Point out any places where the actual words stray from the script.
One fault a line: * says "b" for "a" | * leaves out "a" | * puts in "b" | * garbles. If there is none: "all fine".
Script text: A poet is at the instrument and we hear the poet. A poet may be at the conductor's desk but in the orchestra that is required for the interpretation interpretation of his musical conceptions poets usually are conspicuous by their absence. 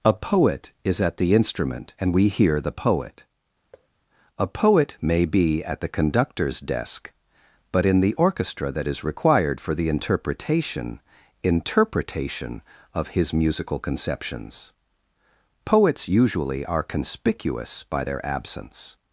all fine